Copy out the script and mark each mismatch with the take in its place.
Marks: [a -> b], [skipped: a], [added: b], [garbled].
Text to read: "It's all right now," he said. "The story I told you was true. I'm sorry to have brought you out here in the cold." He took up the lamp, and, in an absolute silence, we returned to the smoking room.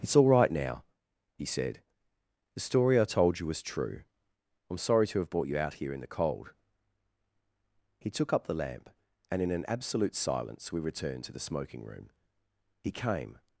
"It's all right now," he said. "The story I told you was true. I'm sorry to have brought you out here in the cold." He took up the lamp, and, in an absolute silence, we returned to the smoking room. [added: He came]